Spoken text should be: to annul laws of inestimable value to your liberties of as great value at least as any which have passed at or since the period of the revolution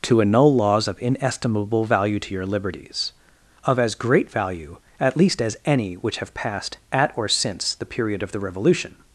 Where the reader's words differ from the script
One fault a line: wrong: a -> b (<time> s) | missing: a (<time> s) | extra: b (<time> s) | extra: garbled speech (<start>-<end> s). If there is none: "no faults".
no faults